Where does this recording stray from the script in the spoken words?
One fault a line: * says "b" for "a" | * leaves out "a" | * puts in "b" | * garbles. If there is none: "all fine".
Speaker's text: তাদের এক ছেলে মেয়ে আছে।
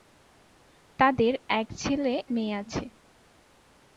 all fine